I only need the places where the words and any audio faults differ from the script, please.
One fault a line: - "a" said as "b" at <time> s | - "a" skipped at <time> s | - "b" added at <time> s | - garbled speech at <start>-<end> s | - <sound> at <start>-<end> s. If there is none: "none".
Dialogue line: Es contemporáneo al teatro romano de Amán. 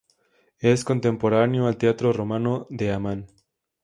none